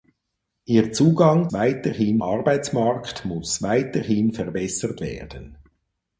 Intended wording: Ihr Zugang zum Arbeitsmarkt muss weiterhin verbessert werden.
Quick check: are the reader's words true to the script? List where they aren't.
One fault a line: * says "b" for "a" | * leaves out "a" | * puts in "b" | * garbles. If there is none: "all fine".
* says "weiterhin" for "zum"